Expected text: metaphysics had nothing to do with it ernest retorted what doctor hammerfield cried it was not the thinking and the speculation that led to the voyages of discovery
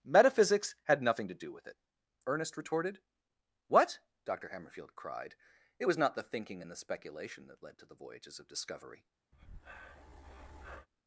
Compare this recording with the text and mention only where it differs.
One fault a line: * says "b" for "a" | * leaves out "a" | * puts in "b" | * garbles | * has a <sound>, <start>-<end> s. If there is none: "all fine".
* has a breath, 9.3-10.9 s